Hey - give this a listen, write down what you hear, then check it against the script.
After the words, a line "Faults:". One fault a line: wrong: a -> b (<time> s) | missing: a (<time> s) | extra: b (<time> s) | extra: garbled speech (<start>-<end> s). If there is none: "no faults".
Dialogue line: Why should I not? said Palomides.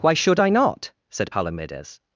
Why should I not? said Palomides.
Faults:
no faults